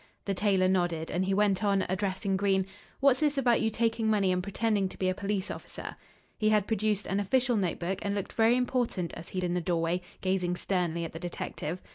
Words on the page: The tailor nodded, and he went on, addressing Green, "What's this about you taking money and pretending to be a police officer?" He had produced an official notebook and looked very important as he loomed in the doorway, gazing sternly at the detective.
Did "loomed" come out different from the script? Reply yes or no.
yes